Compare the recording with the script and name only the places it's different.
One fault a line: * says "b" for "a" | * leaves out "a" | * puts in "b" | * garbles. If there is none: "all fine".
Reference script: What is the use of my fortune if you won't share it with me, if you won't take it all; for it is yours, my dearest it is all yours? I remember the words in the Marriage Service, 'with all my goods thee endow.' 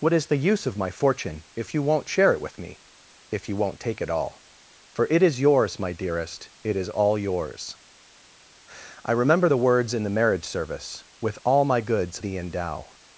all fine